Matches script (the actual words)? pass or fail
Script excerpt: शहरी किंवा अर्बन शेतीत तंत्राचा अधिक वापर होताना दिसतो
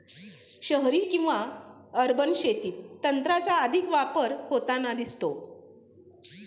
pass